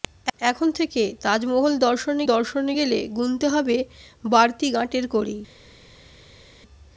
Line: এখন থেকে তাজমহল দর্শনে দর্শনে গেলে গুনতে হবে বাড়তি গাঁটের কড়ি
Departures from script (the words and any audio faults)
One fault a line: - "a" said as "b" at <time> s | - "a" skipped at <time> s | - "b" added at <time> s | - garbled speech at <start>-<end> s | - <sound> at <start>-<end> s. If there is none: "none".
none